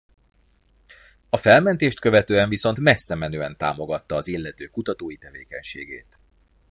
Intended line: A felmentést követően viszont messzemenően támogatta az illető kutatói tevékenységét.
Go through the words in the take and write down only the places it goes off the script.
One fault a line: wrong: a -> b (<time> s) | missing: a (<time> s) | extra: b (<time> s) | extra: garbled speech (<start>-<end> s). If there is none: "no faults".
no faults